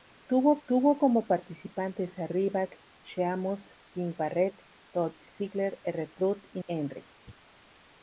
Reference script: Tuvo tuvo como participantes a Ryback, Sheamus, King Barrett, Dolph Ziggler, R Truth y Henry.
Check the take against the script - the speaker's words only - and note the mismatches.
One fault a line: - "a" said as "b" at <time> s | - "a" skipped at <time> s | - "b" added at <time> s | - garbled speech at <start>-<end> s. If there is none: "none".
none